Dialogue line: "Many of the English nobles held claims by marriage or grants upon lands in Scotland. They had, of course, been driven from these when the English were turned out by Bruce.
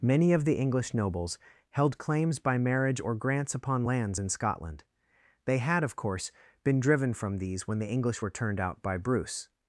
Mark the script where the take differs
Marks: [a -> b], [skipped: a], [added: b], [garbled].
"Many of the English nobles held claims by marriage or grants upon lands in Scotland. They had, of course, been driven from these when the English were turned out by Bruce.